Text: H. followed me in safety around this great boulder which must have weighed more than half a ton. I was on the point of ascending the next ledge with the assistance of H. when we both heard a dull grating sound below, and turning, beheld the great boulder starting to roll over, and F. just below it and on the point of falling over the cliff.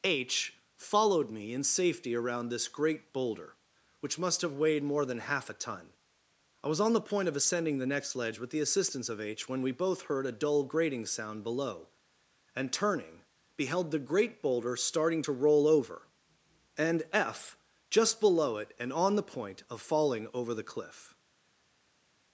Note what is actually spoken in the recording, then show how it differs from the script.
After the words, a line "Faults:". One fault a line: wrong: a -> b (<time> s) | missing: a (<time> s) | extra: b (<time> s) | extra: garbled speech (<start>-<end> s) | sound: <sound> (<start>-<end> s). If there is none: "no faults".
H. followed me in safety around this great boulder which must have weighed more than half a ton. I was on the point of ascending the next ledge with the assistance of H. when we both heard a dull grating sound below, and turning, beheld the great boulder starting to roll over, and F. just below it and on the point of falling over the cliff.
Faults:
no faults